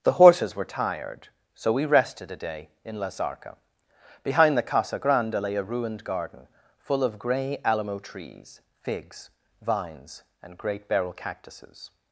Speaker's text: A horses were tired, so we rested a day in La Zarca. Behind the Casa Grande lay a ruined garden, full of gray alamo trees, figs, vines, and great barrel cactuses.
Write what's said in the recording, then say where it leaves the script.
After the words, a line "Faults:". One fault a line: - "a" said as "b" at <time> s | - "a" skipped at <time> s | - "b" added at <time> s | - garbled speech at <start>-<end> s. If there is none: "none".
The horses were tired, so we rested a day in La Zarca. Behind the Casa Grande lay a ruined garden, full of gray alamo trees, figs, vines, and great barrel cactuses.
Faults:
- "A" said as "The" at 0.0 s